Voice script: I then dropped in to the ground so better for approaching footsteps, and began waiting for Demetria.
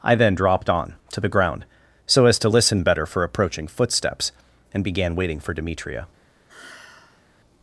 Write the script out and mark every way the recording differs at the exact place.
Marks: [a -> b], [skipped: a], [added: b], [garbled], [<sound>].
I then dropped [in -> on] to the ground so [added: as to listen] better for approaching footsteps, and began waiting for Demetria. [sigh]